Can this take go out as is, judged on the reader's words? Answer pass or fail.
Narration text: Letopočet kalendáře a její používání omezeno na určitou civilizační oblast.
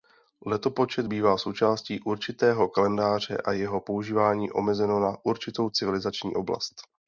fail